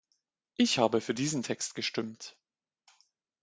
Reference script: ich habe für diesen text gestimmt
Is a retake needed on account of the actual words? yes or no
no